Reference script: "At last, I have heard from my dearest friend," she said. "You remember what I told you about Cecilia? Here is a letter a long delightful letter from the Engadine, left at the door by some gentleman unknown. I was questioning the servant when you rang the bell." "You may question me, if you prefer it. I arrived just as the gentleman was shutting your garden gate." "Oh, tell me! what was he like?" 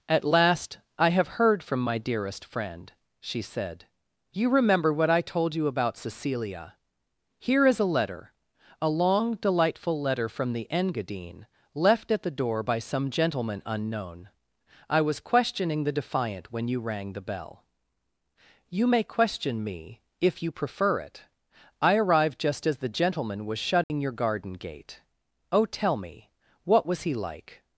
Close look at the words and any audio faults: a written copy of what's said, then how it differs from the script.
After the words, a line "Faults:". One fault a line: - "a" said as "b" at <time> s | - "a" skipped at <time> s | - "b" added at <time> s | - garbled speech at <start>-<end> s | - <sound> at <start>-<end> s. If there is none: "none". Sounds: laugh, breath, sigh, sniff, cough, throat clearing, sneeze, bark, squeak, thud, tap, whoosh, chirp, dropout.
"At last, I have heard from my dearest friend," she said. "You remember what I told you about Cecilia? Here is a letter a long delightful letter from the Engadine, left at the door by some gentleman unknown. I was questioning the defiant when you rang the bell." "You may question me, if you prefer it. I arrived just as the gentleman was shutting your garden gate." "Oh, tell me! what was he like?"
Faults:
- "servant" said as "defiant" at 16.0 s
- dropout at 23.8-23.9 s